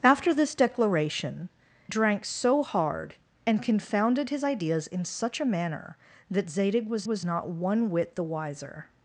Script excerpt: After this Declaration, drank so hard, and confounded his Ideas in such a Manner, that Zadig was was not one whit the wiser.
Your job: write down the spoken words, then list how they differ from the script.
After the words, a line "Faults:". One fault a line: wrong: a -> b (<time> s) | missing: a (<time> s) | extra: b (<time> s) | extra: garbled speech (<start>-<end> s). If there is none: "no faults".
After this Declaration, drank so hard, and confounded his Ideas in such a Manner, that Zadig was was not one whit the wiser.
Faults:
no faults